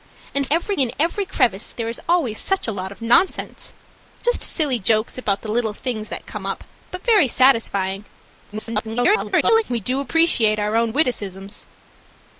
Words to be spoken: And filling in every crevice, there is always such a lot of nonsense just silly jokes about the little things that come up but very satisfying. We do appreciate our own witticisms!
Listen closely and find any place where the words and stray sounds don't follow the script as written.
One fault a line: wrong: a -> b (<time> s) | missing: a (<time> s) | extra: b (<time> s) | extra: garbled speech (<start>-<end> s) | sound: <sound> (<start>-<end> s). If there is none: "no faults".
wrong: filling -> every (0.5 s)
extra: garbled speech (8.5-9.6 s)